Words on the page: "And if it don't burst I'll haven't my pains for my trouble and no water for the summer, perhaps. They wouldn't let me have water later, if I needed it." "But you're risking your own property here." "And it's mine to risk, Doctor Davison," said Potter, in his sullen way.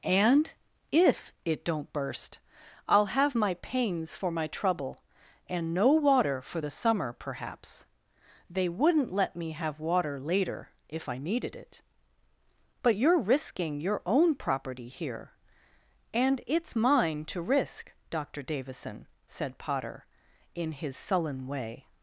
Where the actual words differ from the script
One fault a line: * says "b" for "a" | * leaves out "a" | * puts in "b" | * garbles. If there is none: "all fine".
* says "have" for "haven't"